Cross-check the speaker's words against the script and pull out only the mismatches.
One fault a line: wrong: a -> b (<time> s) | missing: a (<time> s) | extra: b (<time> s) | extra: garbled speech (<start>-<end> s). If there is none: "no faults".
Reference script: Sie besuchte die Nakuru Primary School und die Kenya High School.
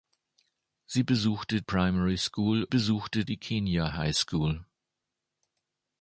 missing: die Nakuru (1.6 s)
wrong: und -> besuchte (2.7 s)